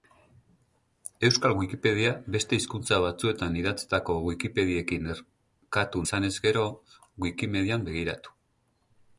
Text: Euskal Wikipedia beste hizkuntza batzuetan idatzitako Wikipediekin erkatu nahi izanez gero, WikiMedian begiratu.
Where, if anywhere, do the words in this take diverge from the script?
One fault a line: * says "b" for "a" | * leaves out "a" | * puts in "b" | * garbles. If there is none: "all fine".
* leaves out "nahi"